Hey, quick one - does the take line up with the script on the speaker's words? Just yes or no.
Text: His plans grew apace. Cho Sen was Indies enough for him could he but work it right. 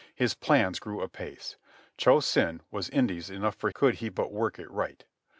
no